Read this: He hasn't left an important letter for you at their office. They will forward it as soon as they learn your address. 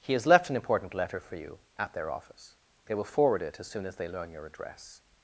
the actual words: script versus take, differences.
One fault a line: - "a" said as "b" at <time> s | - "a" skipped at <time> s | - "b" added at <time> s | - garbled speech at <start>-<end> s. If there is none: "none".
- "hasn't" said as "has" at 0.1 s